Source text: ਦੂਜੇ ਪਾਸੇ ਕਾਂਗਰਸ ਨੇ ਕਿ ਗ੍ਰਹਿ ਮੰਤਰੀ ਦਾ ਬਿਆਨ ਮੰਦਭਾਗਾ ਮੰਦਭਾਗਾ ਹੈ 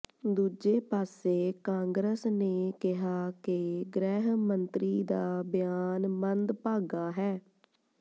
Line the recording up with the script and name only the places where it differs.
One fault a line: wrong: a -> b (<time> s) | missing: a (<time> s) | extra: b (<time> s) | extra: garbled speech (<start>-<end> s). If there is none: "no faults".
extra: ਕਿਹਾ (2.8 s)
missing: ਮੰਦਭਾਗਾ (7.1 s)